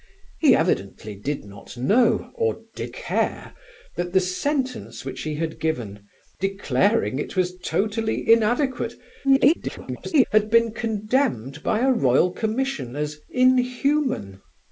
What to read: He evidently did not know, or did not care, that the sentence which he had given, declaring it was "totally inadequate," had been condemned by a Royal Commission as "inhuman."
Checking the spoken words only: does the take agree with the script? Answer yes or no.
no